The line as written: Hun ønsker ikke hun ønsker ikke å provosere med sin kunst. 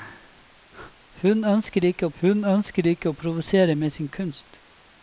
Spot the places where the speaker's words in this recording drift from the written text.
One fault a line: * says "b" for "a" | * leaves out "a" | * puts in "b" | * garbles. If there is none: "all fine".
all fine